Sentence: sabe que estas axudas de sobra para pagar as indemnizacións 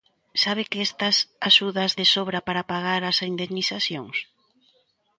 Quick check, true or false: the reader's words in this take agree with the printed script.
true